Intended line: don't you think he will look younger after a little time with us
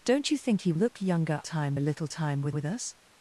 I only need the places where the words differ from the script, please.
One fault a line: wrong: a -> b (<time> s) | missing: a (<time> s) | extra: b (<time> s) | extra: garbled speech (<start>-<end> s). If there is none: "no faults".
missing: will (0.7 s)
wrong: after -> time (1.4 s)
extra: with (2.5 s)